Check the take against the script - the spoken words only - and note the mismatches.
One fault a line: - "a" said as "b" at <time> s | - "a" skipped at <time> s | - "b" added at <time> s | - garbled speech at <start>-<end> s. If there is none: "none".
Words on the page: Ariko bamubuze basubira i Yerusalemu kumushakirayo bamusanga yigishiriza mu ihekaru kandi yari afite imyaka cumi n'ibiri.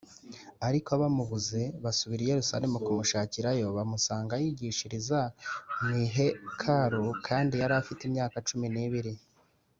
none